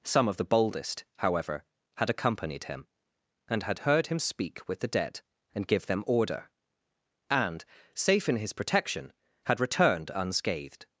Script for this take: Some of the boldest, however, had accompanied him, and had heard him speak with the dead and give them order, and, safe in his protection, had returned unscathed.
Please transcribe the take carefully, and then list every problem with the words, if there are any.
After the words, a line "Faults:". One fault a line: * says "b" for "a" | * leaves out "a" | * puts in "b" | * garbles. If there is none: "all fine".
Some of the boldest, however, had accompanied him, and had heard him speak with the dead and give them order, and, safe in his protection, had returned unscathed.
Faults:
all fine